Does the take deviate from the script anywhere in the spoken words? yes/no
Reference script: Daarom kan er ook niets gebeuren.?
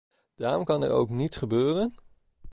no